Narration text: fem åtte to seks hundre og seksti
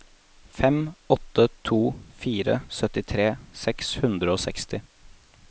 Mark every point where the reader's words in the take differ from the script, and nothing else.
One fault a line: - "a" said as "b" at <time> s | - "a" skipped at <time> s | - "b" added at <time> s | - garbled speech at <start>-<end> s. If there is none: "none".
- "fire syttitre" added at 2.2 s